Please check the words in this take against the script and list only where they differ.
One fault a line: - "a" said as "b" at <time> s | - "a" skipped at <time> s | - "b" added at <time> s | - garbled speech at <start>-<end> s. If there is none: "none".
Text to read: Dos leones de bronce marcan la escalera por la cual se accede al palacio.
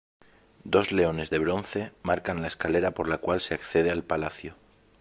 none